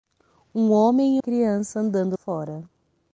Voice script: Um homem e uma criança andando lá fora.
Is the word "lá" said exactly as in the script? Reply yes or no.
no